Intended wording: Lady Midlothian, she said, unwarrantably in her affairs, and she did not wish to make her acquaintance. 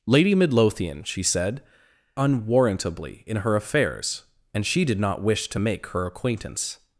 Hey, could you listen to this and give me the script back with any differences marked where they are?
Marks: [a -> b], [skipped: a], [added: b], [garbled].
Lady Midlothian, she said, unwarrantably in her affairs, and she did not wish to make her acquaintance.